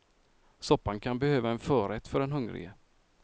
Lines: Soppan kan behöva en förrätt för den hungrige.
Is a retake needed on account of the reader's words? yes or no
no